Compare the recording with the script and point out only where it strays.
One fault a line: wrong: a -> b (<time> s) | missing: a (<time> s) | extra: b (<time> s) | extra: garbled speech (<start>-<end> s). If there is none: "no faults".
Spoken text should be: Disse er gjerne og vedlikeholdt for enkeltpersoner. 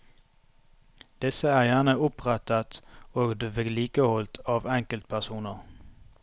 extra: opprettet (2.1 s)
wrong: for -> av (4.6 s)